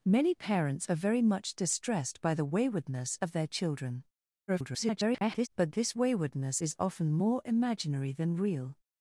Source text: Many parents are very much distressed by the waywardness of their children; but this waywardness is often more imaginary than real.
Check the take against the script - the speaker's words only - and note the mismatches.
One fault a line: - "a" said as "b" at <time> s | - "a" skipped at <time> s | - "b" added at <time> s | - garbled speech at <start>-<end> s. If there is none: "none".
- garbled speech at 4.5-5.5 s